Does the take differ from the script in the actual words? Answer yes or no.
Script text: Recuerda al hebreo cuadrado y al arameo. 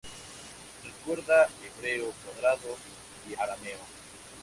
yes